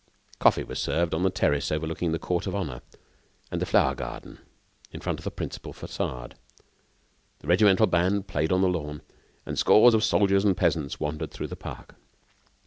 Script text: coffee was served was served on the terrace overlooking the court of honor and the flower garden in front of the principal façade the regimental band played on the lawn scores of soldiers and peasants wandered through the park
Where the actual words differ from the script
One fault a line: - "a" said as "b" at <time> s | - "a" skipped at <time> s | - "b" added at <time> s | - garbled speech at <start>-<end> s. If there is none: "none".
- "was served" skipped at 1.1 s
- "and" added at 9.4 s